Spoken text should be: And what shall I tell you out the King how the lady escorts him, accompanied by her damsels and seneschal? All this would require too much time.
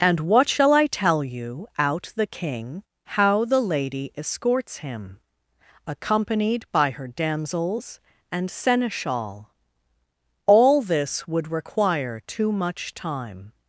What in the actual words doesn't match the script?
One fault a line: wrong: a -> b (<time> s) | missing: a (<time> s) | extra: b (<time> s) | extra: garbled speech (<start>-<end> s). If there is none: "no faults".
no faults